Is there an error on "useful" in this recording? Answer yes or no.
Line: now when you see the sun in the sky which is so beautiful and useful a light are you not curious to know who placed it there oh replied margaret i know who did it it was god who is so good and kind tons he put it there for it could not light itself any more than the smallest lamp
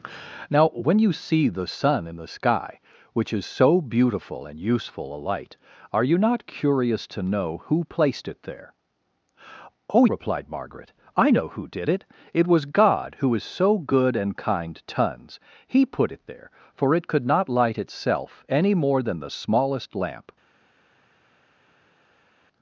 no